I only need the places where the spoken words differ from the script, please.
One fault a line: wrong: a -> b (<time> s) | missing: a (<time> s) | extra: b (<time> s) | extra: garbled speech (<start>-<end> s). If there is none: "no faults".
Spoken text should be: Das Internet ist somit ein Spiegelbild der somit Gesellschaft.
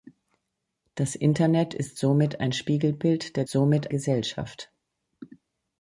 no faults